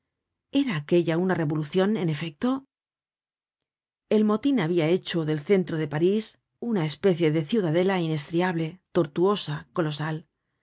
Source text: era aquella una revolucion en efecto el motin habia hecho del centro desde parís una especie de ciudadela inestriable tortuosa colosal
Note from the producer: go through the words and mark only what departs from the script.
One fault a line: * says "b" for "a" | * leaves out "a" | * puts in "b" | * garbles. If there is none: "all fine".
* says "de" for "desde"